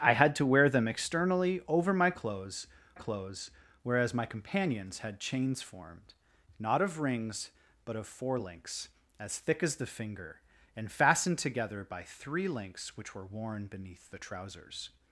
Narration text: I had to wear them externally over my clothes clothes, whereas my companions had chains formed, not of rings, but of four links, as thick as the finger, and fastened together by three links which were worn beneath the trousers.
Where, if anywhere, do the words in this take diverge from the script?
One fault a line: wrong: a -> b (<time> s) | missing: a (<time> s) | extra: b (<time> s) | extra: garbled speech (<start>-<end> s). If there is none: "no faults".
no faults